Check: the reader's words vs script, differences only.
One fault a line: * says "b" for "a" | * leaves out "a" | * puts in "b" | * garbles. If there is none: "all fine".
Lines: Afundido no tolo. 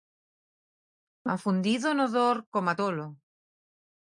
* puts in "dor coma"